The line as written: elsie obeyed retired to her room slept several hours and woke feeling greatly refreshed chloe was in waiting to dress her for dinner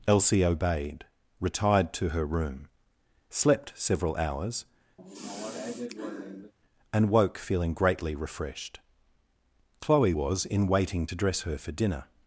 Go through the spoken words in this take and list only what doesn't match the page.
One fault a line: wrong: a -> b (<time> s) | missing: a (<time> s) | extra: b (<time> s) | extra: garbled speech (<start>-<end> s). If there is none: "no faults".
no faults